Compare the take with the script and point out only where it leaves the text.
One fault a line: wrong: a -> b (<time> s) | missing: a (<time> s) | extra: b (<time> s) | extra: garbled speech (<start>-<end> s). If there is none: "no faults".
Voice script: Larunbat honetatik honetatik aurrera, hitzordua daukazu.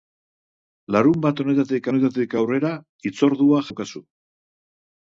no faults